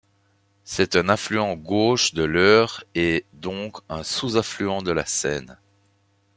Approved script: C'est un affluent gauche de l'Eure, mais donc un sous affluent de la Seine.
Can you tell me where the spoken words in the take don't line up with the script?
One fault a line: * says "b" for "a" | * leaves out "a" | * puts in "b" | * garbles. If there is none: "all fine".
* says "et" for "mais"